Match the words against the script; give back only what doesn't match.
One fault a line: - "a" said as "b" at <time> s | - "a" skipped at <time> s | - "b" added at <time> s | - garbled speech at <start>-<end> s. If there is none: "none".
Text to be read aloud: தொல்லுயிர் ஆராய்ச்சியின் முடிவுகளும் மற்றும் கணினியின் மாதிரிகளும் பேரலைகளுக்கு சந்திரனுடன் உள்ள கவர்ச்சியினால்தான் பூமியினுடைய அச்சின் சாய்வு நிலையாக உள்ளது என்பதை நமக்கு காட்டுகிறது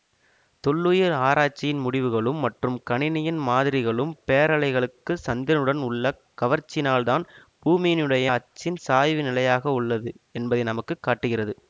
none